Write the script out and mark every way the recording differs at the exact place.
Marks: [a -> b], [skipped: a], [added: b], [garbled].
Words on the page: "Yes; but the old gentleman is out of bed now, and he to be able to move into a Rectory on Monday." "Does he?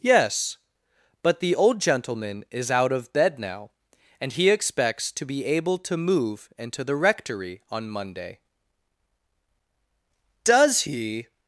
"Yes; but the old gentleman is out of bed now, and he [added: expects] to be able to move into [a -> the] Rectory on Monday." "Does he?